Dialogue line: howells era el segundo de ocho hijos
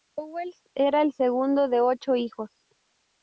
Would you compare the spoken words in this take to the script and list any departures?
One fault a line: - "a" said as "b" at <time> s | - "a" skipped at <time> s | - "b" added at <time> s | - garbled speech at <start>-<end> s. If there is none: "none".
none